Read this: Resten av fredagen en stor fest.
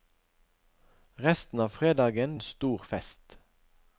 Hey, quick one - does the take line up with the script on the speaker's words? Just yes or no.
yes